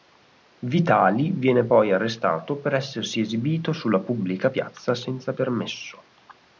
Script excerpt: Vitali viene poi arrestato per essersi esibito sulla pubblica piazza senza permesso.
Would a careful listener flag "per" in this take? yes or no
no